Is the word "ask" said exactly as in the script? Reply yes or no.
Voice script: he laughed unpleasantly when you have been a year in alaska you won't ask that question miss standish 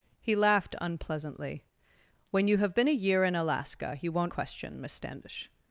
no